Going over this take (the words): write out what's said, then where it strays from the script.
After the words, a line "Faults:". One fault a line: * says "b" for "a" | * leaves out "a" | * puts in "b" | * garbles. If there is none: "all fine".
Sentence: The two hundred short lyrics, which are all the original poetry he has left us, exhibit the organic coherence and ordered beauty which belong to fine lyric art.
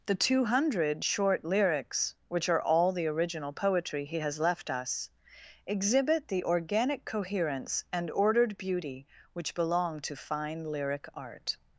The two hundred short lyrics, which are all the original poetry he has left us, exhibit the organic coherence and ordered beauty which belong to fine lyric art.
Faults:
all fine